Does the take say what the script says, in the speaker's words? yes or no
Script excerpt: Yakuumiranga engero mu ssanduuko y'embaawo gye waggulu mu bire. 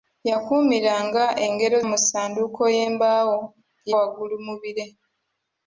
yes